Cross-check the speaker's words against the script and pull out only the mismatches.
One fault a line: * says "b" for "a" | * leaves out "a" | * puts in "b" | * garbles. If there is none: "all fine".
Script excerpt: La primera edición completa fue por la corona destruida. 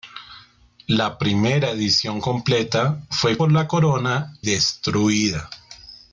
all fine